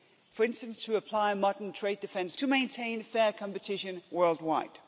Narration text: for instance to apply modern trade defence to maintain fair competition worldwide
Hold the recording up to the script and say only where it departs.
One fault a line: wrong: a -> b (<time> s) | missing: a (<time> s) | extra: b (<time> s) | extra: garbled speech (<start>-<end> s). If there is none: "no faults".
no faults